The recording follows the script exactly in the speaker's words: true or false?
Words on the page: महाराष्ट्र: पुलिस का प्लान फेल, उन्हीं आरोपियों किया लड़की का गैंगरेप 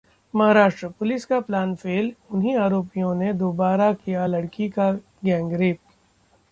false